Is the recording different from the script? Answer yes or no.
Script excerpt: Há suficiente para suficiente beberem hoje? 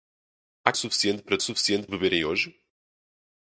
no